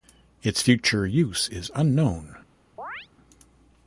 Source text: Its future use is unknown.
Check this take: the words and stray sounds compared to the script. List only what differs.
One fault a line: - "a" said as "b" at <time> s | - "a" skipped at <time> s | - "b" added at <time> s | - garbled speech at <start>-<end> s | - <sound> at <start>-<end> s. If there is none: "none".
- chirp at 2.8-3.1 s